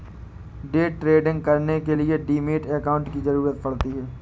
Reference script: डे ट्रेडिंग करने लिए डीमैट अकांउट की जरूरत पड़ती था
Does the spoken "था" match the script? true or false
false